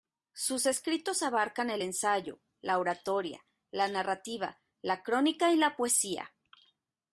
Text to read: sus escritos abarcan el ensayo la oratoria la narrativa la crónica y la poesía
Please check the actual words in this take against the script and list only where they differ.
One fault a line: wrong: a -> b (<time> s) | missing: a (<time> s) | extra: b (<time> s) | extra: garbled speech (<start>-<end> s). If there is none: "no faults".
no faults